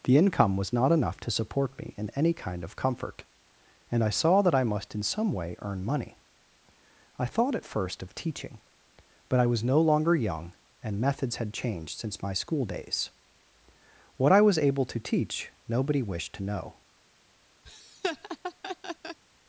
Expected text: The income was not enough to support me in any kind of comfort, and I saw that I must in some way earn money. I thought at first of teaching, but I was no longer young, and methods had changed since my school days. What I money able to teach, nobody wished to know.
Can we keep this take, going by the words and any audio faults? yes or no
no